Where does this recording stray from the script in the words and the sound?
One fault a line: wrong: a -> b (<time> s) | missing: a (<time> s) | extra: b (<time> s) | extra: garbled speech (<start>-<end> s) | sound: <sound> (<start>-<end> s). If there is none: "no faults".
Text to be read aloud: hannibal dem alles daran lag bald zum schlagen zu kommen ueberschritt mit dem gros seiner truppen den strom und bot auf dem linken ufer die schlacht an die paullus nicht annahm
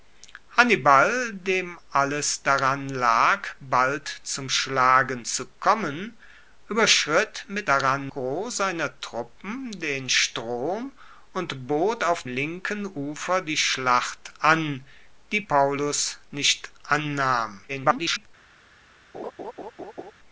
wrong: dem -> daran (7.6 s)
missing: dem (12.2 s)
extra: garbled speech (17.7-18.3 s)
sound: laugh (19.1-20.1 s)